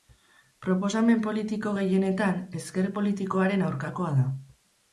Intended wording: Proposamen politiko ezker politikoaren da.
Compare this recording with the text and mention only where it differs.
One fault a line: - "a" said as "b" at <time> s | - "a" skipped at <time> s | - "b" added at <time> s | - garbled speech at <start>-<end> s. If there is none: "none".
- "gehienetan" added at 1.8 s
- "aurkakoa" added at 3.7 s